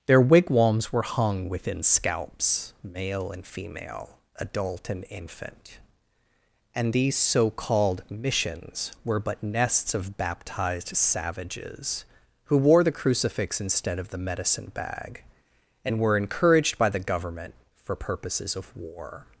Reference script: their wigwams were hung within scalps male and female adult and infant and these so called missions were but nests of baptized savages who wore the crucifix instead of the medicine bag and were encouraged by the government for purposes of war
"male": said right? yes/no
yes